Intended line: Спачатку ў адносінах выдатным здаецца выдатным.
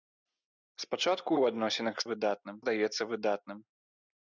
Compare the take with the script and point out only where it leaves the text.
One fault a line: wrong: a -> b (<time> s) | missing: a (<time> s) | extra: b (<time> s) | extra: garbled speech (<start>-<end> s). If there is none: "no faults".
no faults